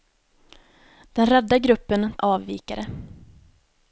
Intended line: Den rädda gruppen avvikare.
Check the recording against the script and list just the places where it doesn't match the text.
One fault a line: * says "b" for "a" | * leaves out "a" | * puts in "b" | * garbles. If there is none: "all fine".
all fine